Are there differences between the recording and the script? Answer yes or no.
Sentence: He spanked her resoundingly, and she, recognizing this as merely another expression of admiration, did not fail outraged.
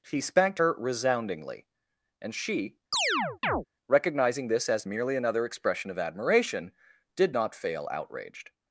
no